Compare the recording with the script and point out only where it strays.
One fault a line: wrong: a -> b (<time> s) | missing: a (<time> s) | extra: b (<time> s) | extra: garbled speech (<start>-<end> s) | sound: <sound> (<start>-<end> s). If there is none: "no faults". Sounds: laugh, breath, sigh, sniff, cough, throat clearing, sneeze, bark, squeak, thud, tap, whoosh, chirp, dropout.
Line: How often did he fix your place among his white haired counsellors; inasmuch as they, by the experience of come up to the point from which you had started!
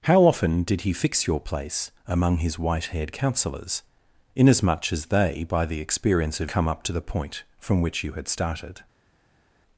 no faults